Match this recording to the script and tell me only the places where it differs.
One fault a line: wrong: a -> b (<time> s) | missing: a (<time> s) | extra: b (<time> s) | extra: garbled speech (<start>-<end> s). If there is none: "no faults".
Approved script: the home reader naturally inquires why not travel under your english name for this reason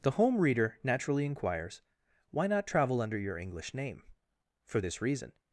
no faults